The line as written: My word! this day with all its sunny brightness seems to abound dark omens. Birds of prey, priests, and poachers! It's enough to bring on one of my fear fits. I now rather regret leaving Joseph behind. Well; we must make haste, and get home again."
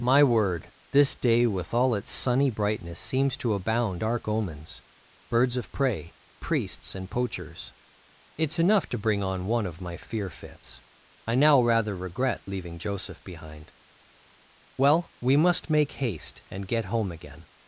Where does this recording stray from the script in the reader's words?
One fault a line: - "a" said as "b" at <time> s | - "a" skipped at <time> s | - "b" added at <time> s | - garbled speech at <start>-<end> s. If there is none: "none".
none